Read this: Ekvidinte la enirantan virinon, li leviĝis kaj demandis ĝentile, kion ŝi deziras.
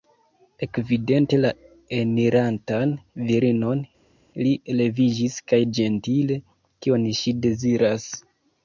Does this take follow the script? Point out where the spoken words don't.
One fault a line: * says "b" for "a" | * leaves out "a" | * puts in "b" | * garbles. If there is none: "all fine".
* leaves out "demandis"